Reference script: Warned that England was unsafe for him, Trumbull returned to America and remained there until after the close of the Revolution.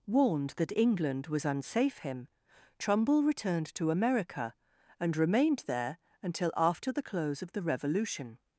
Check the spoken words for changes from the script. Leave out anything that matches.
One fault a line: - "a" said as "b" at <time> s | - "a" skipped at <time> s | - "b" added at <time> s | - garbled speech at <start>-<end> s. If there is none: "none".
- "for" skipped at 2.0 s